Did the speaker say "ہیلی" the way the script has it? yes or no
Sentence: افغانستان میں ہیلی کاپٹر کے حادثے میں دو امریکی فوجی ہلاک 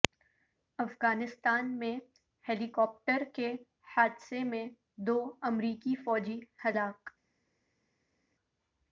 yes